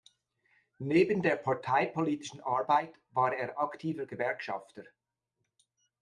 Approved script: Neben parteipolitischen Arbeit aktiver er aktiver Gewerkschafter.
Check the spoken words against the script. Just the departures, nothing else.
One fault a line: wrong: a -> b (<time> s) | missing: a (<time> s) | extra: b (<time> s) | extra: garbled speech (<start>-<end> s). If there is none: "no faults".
extra: der (1.2 s)
wrong: aktiver -> war (3.1 s)